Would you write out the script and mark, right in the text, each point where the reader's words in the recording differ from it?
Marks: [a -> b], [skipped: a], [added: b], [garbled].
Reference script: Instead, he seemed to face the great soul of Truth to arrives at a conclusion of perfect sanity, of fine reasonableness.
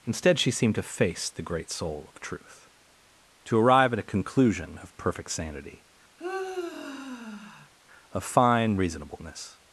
Instead, [he -> she] seemed to face the great soul of Truth to [arrives -> arrive] at a conclusion of perfect sanity, of fine reasonableness.